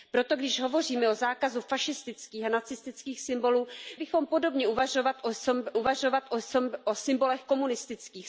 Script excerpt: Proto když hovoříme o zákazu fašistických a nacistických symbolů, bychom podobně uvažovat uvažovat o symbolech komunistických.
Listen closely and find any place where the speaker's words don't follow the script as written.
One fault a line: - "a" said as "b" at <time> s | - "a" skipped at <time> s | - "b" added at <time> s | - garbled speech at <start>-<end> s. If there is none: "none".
none